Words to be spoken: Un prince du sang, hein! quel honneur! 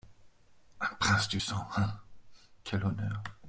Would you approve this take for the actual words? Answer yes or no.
yes